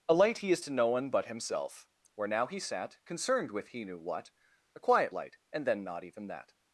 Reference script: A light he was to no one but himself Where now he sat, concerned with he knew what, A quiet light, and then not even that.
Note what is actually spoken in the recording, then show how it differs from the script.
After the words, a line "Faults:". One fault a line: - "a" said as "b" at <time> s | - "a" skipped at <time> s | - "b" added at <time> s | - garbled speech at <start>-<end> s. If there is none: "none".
A light he is to no one but himself Where now he sat, concerned with he knew what, A quiet light, and then not even that.
Faults:
- "was" said as "is" at 0.5 s